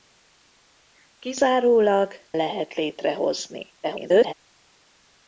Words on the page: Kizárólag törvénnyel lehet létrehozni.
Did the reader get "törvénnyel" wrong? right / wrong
wrong